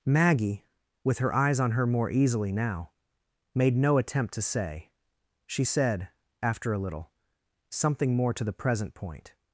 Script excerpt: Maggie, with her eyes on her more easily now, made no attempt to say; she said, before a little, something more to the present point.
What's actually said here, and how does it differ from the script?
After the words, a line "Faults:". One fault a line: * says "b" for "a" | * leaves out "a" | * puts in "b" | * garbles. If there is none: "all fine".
Maggie, with her eyes on her more easily now, made no attempt to say; she said, after a little, something more to the present point.
Faults:
* says "after" for "before"